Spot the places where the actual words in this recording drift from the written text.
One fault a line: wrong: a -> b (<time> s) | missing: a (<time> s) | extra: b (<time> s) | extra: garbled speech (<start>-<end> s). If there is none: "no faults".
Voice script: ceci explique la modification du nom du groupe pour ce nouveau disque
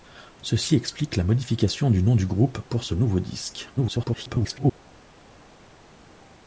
extra: garbled speech (3.8-4.8 s)